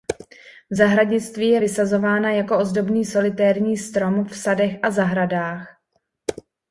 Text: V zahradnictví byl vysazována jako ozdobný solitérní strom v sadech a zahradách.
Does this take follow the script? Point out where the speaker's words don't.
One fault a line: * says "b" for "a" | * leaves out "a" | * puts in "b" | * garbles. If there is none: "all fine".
* says "je" for "byl"